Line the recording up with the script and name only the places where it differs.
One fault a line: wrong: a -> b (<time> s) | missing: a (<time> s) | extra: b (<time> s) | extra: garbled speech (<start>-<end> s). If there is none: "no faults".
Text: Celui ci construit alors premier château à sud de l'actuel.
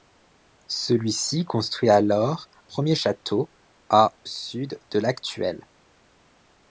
no faults